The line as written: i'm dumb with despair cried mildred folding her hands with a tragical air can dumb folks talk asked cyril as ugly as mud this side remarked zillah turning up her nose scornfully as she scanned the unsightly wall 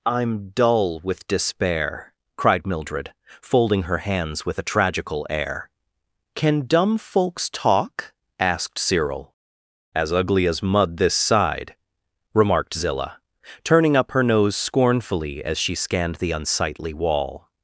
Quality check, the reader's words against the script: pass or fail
fail